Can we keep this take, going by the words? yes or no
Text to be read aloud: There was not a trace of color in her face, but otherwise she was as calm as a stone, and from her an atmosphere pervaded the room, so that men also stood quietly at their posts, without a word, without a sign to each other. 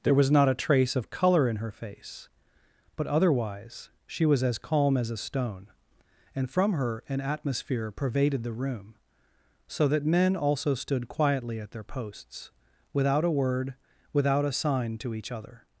yes